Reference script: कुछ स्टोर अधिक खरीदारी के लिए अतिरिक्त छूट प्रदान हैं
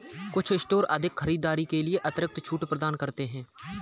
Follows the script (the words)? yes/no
no